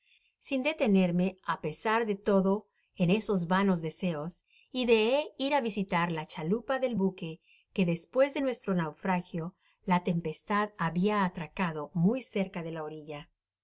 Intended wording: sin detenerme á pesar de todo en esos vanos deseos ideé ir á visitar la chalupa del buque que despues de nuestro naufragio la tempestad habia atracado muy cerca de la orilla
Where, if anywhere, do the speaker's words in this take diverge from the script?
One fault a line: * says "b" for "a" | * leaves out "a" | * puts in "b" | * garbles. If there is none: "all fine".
all fine